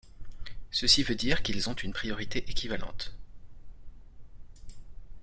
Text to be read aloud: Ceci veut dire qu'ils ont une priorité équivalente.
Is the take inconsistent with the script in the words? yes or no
no